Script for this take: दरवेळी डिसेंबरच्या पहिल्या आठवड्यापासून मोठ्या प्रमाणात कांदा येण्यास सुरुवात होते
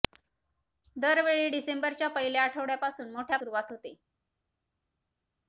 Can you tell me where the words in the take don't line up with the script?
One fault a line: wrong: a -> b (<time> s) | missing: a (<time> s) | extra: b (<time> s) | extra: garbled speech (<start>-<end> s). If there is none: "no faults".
missing: प्रमाणात कांदा येण्यास (3.4 s)